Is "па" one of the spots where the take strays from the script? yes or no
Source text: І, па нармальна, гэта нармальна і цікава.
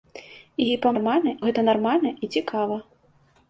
no